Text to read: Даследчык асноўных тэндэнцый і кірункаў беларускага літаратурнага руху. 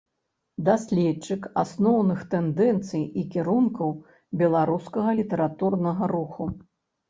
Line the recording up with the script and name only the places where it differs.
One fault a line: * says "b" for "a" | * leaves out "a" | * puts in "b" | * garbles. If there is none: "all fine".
all fine